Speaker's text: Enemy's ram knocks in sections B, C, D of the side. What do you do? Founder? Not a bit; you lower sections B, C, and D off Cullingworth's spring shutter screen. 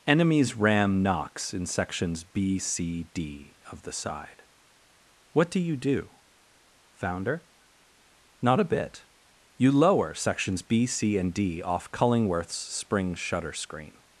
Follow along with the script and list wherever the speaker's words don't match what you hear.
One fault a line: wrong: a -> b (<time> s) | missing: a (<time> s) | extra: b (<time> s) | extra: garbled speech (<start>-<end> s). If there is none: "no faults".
no faults